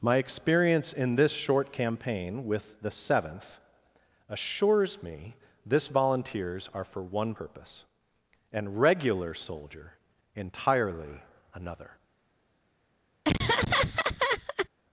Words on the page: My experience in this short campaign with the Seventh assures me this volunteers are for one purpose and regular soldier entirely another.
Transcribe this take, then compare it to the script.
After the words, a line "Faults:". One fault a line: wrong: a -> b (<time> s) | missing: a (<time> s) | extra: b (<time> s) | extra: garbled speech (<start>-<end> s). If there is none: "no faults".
My experience in this short campaign with the Seventh assures me this volunteers are for one purpose and regular soldier entirely another.
Faults:
no faults